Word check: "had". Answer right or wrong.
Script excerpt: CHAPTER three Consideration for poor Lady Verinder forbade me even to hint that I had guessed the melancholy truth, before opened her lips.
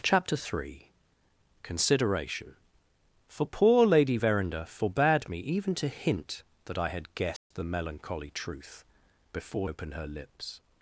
right